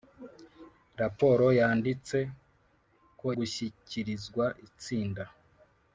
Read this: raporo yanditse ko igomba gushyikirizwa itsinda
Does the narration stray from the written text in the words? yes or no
yes